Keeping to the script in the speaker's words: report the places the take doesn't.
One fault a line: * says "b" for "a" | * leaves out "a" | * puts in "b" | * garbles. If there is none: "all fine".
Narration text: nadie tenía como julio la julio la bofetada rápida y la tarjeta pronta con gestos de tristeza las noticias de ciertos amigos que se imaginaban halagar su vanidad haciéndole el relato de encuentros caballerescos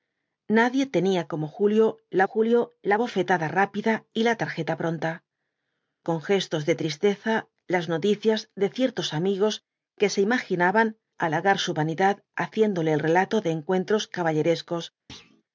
all fine